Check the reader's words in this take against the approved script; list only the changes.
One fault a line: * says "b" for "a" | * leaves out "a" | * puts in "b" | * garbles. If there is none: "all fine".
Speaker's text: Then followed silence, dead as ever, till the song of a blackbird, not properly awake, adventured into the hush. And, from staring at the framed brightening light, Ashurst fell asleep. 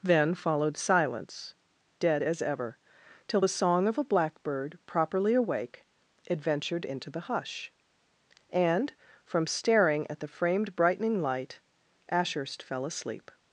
* leaves out "not"